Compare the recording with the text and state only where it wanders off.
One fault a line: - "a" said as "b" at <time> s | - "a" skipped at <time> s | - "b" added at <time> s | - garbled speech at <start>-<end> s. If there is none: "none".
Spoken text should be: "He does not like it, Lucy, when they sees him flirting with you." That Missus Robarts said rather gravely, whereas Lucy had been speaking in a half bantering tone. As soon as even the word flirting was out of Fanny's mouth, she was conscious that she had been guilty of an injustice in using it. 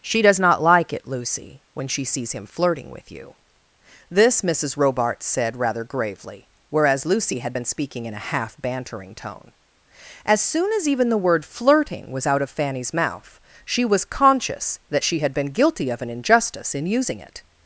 - "He" said as "She" at 0.0 s
- "they" said as "she" at 1.9 s
- "That" said as "This" at 4.1 s